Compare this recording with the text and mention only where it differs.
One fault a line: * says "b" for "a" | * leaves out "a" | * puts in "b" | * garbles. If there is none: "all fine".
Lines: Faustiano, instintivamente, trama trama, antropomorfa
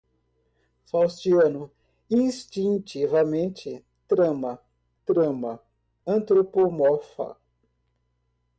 all fine